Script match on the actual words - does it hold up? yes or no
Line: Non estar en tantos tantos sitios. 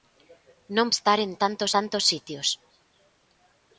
yes